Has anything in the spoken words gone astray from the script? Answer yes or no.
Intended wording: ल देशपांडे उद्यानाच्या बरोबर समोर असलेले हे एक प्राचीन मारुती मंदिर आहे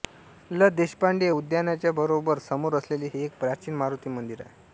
no